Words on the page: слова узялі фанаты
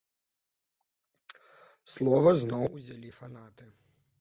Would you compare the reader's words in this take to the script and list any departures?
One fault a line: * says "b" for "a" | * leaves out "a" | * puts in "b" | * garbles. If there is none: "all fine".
* puts in "зноў"